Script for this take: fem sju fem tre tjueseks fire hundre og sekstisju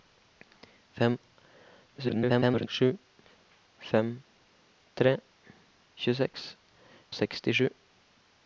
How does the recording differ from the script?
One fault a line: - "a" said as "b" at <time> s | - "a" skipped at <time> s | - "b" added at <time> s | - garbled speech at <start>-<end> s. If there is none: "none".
- garbled speech at 2.0-2.7 s
- "fire hundre" skipped at 6.5 s